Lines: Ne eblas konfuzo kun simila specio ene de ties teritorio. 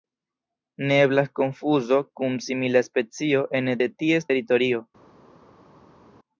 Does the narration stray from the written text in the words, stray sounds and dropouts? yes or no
no